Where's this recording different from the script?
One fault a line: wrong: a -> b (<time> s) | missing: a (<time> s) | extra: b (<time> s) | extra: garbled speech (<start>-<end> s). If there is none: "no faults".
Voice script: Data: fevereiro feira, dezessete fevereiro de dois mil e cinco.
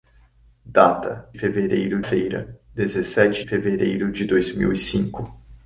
no faults